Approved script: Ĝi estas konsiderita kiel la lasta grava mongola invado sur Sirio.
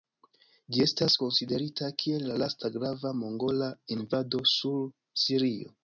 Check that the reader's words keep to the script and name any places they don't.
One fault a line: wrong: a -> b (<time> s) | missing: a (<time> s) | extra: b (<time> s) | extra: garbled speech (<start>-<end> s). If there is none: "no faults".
no faults